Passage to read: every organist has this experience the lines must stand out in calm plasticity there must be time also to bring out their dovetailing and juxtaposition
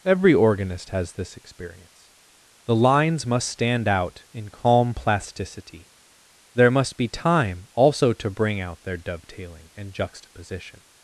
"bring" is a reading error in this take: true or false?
false